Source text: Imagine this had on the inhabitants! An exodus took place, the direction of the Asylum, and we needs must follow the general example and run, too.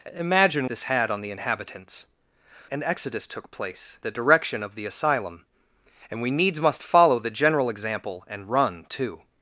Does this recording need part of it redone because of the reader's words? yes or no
no